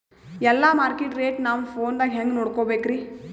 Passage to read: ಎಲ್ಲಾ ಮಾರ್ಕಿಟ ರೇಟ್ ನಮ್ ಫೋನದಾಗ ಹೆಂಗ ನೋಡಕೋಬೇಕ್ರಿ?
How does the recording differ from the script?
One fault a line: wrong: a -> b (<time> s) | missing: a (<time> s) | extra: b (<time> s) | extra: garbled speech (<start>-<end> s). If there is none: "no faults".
no faults